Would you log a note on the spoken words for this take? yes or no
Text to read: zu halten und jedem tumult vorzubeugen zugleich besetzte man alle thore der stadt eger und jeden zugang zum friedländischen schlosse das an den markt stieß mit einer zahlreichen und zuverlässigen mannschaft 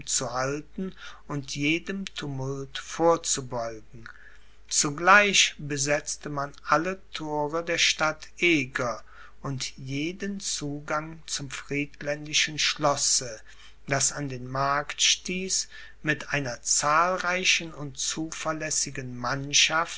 no